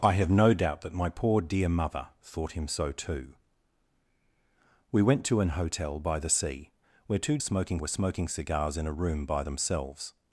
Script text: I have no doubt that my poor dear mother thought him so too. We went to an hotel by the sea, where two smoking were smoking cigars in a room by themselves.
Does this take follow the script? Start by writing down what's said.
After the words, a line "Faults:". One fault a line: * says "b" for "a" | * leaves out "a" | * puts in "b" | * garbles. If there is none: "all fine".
I have no doubt that my poor dear mother thought him so too. We went to an hotel by the sea, where two smoking were smoking cigars in a room by themselves.
Faults:
all fine